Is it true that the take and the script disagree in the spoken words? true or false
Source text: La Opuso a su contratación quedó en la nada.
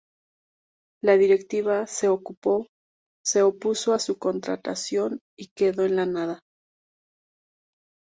true